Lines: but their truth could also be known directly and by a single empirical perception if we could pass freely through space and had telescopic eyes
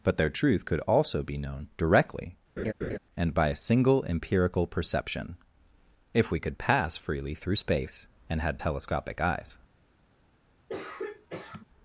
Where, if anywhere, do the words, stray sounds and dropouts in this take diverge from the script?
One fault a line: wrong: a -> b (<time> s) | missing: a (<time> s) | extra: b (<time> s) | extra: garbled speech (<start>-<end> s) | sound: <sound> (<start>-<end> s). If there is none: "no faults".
sound: laugh (2.6-3.0 s)
sound: throat clearing (10.7-11.6 s)